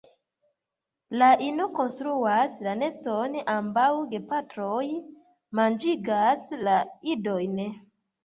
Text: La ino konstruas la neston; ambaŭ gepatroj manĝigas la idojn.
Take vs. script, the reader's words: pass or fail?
pass